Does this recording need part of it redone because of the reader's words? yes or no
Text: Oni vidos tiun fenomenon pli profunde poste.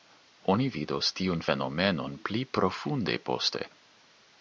no